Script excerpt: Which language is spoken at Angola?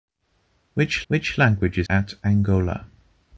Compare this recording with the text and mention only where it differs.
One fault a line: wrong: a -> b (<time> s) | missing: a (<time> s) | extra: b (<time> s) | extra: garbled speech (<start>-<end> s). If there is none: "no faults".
extra: which (1.1 s)
missing: spoken (1.9 s)